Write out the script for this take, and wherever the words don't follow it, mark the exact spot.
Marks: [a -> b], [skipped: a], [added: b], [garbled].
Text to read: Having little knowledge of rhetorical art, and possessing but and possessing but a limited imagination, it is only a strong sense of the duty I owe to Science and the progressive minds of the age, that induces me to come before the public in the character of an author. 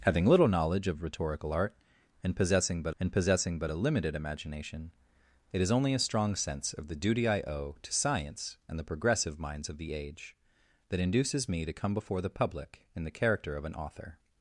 Having little knowledge of rhetorical art, and possessing but and possessing but a limited imagination, it is only a strong sense of the duty I owe to Science and the progressive minds of the age, that induces me to come before the public in the character of an author.